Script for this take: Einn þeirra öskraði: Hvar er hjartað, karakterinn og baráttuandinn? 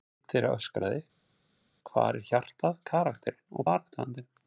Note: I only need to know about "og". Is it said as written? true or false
true